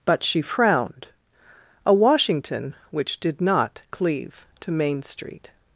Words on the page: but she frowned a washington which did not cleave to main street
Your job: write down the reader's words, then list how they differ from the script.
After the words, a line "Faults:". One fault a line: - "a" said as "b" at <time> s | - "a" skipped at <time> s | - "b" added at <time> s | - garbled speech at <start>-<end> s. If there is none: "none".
but she frowned a washington which did not cleave to main street
Faults:
none